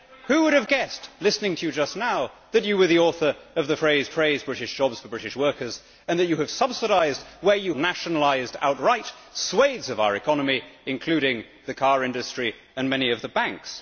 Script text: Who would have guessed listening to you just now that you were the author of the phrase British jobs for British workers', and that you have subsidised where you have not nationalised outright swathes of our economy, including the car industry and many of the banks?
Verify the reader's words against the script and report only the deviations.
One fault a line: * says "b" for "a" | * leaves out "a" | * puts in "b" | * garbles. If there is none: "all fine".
* puts in "phrase"
* leaves out "have not"